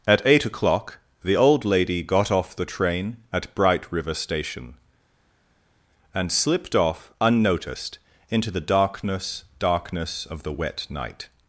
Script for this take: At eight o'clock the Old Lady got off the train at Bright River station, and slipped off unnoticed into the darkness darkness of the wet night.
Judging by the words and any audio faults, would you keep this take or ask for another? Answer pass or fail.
pass